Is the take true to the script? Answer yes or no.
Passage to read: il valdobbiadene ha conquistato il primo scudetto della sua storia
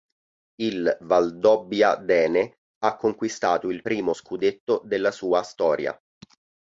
yes